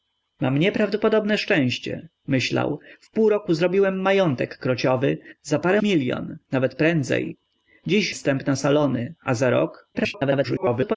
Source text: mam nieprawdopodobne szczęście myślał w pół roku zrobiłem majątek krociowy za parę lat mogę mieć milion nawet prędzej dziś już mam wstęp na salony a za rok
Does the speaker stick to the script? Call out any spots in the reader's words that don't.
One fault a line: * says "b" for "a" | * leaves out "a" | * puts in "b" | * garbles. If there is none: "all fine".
* leaves out "lat mogę mieć"
* leaves out "już mam"
* garbles